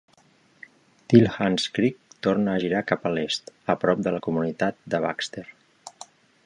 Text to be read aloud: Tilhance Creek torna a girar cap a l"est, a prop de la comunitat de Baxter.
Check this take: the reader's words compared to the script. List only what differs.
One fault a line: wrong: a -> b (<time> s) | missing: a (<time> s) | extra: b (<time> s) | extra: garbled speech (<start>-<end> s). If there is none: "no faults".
no faults